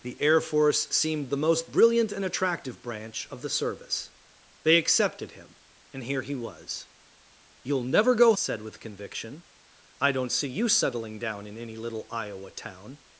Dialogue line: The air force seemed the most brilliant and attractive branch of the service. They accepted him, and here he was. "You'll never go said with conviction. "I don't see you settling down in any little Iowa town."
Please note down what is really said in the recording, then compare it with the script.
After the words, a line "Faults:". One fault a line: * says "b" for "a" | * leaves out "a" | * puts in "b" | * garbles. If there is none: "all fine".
The air force seemed the most brilliant and attractive branch of the service. They accepted him, and here he was. "You'll never go said with conviction. "I don't see you settling down in any little Iowa town."
Faults:
all fine